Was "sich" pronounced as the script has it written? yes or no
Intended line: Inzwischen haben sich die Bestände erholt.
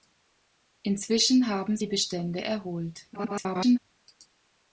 no